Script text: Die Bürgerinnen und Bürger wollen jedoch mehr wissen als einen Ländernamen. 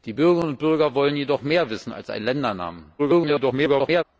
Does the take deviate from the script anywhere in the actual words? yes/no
yes